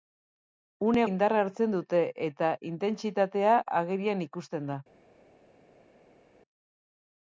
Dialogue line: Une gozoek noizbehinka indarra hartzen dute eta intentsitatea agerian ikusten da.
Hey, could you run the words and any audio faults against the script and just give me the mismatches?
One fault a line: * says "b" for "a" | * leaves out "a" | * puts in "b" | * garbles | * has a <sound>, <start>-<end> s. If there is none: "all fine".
* leaves out "gozoek noizbehinka"